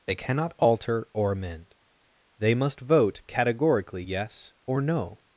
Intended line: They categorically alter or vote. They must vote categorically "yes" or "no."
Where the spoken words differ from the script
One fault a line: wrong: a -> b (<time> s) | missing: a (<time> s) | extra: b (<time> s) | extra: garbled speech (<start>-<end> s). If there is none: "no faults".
wrong: categorically -> cannot (0.1 s)
wrong: vote -> amend (1.3 s)